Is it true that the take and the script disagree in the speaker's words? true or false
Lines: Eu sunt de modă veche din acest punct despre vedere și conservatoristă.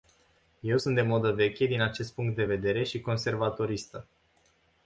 true